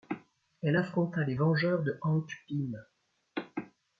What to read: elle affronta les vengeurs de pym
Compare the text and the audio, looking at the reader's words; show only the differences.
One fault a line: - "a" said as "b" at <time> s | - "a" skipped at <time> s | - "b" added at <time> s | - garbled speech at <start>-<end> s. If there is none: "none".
- "hank" added at 2.0 s